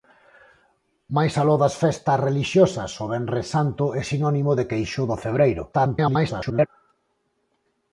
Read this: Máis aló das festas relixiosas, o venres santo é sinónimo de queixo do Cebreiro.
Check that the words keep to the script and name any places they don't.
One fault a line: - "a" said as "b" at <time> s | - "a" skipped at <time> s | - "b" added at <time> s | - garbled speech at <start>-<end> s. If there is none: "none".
- garbled speech at 5.7-6.7 s